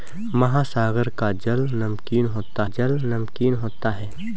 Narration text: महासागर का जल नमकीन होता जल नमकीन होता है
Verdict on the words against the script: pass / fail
pass